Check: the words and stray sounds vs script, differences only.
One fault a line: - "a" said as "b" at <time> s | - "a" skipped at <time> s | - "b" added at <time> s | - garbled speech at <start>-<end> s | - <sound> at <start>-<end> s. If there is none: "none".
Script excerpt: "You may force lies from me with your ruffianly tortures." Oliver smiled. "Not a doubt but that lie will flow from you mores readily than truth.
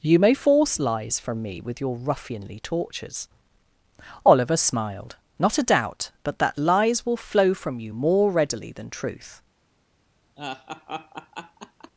- "lie" said as "lies" at 6.6 s
- "mores" said as "more" at 7.9 s
- laugh at 10.4-11.9 s